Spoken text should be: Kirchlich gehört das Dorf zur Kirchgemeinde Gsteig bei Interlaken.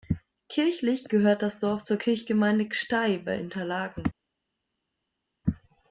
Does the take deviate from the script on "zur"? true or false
false